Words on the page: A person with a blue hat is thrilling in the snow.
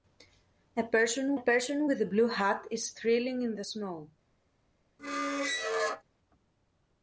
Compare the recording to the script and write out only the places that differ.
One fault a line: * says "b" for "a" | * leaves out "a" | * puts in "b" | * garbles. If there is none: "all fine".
* puts in "person"